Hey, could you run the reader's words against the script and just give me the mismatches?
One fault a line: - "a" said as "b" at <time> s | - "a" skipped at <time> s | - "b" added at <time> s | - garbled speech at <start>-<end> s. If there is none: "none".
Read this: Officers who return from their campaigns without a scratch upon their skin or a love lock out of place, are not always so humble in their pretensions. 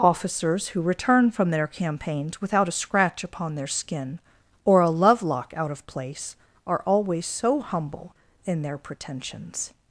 - "not" skipped at 6.8 s